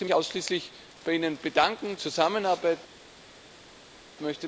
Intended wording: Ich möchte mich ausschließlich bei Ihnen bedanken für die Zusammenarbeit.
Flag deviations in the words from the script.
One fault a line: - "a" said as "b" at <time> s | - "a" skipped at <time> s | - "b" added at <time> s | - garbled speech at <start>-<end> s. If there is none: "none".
- "möchte" skipped at 0.1 s
- "für die" skipped at 2.0 s